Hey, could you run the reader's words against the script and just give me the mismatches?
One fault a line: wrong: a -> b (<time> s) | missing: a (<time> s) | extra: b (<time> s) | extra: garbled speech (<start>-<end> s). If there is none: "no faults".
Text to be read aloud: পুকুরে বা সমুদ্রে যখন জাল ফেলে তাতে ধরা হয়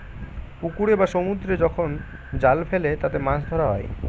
extra: মাছ (3.2 s)